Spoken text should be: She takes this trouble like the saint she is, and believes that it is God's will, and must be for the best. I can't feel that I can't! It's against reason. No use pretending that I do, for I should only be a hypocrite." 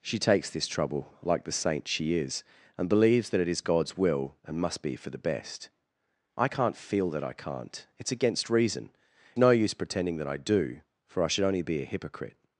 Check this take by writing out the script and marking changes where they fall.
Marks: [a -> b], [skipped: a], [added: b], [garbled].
She takes this trouble like the saint she is, and believes that it is God's will, and must be for the best. I can't feel that I can't! It's against reason. No use pretending that I do, for I should only be a hypocrite."